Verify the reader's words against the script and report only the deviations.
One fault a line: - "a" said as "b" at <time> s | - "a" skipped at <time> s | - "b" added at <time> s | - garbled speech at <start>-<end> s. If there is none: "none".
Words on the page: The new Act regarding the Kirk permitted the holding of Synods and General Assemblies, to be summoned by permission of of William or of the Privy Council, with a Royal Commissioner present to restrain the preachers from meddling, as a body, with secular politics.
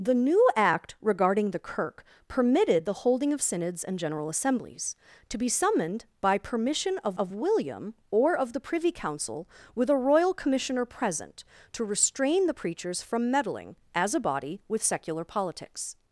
none